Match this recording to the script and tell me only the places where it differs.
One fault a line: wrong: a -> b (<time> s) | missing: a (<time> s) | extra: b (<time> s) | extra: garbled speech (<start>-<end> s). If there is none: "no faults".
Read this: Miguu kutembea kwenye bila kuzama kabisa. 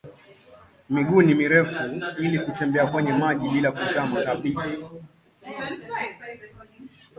extra: ni mirefu ili (1.2 s)
extra: maji (3.1 s)